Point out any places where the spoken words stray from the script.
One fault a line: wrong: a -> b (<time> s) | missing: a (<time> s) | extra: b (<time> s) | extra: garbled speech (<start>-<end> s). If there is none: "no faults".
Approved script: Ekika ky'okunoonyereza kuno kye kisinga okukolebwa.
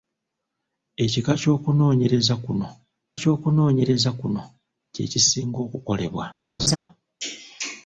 extra: ky'okunoonyereza kuno (3.2 s)